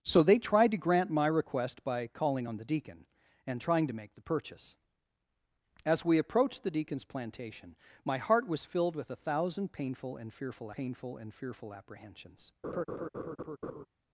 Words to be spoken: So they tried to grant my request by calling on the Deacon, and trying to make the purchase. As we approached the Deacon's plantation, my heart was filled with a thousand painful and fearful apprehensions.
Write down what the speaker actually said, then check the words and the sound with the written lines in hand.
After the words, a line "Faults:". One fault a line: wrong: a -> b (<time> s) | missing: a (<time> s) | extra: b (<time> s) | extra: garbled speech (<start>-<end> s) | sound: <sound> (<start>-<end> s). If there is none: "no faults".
So they tried to grant my request by calling on the Deacon, and trying to make the purchase. As we approached the Deacon's plantation, my heart was filled with a thousand painful and fearful painful and fearful apprehensions.
Faults:
extra: painful and fearful (10.7 s)
sound: laugh (12.6-13.9 s)